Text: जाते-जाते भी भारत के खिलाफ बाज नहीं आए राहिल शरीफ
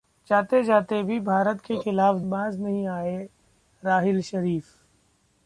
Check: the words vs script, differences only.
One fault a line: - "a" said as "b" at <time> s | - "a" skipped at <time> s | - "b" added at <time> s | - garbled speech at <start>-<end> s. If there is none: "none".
none